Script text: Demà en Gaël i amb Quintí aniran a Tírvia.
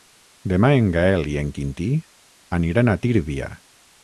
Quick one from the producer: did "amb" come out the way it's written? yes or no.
no